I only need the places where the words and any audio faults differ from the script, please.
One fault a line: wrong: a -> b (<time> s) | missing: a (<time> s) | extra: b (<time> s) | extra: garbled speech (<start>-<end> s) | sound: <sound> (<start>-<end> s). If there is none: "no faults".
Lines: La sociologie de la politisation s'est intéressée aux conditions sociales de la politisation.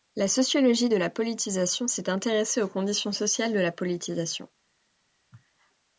no faults